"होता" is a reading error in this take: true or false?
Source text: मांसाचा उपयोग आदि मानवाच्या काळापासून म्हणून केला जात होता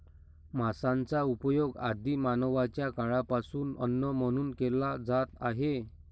true